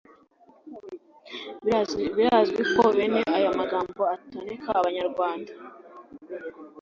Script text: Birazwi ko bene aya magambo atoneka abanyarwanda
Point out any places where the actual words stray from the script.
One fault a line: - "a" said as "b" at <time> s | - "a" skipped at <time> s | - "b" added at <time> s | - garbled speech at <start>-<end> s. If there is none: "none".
none